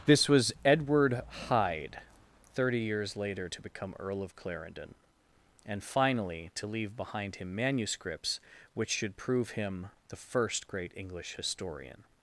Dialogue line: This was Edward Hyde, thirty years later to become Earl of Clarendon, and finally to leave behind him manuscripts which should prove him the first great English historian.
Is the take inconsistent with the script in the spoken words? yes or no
no